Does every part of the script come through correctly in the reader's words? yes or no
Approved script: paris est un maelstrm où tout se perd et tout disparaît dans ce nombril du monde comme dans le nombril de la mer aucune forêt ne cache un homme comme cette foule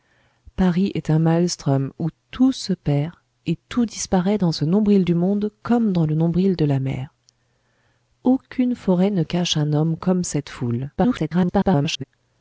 no